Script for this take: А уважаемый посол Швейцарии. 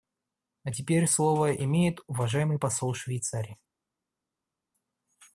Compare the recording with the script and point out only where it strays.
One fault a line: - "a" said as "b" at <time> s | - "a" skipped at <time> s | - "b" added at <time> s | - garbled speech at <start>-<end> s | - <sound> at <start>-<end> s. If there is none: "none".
- "теперь слово имеет" added at 0.7 s